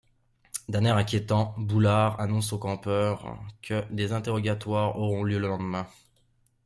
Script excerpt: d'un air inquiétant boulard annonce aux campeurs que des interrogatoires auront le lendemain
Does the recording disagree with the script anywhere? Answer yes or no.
yes